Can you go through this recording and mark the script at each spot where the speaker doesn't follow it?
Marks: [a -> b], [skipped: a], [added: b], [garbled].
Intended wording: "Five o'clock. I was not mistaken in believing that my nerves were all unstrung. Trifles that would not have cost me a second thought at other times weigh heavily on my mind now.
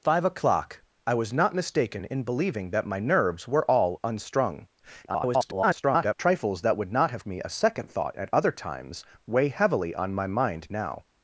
"Five o'clock. I was not mistaken in believing that my nerves were all unstrung. [garbled] Trifles that would not have [skipped: cost] me a second thought at other times weigh heavily on my mind now.